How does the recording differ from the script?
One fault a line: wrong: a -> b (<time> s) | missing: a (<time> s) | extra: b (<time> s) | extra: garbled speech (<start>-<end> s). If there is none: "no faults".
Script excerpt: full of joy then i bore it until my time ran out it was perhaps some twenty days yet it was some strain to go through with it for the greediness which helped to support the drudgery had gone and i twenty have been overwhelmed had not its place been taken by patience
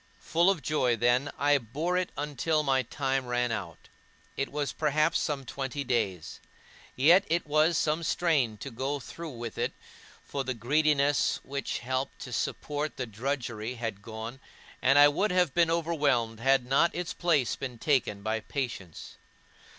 wrong: twenty -> would (15.1 s)